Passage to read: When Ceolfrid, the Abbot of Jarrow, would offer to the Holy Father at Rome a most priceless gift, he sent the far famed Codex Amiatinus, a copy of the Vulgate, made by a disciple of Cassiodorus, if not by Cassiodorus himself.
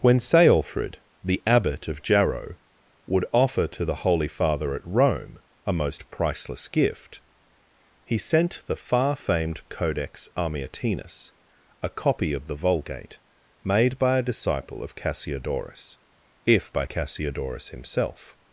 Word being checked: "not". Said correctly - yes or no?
no